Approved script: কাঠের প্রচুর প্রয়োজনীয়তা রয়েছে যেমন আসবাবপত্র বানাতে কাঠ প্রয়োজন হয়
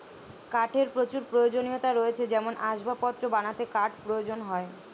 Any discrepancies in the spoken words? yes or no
no